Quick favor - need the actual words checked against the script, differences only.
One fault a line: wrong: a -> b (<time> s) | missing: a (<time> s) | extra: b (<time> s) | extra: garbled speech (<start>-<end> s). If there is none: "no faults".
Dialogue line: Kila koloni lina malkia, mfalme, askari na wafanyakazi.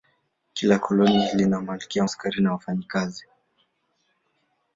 missing: mfalme (2.0 s)